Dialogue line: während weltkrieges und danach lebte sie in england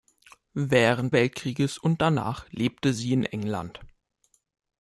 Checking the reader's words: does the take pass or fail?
pass